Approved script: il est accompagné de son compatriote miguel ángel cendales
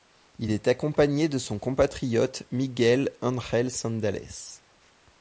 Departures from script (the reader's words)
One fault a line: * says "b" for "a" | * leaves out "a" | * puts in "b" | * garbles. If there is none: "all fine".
all fine